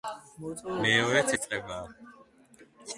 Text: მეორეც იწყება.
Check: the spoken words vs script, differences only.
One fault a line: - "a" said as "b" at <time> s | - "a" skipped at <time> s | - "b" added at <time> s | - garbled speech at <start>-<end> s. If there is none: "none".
none